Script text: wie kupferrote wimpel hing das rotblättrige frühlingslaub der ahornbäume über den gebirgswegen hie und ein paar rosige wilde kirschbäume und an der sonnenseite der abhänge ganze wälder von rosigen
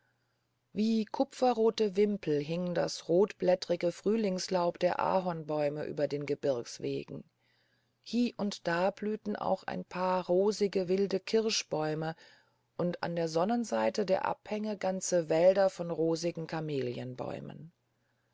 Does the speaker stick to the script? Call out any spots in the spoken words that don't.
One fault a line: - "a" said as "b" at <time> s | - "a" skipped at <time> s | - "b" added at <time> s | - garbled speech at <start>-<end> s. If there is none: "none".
- "da blühten auch" added at 8.7 s